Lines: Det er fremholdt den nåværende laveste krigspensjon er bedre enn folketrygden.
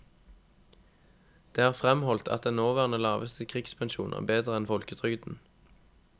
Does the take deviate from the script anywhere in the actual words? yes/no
yes